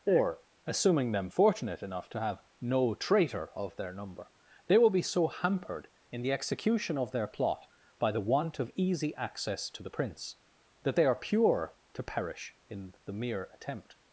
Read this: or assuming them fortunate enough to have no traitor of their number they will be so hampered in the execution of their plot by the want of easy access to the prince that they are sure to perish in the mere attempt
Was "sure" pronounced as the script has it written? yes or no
no